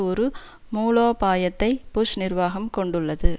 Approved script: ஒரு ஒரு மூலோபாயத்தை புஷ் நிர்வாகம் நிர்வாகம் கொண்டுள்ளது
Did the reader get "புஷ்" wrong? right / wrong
right